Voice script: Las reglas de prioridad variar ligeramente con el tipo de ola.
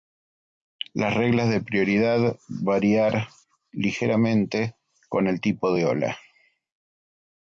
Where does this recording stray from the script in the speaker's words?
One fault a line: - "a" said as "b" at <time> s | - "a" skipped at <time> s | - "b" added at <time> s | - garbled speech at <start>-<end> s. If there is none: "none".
none